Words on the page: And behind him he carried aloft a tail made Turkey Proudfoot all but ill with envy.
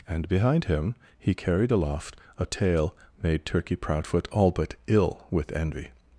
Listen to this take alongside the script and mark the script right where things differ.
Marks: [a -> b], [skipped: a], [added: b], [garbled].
And behind him he carried aloft a tail made Turkey Proudfoot all but ill with envy.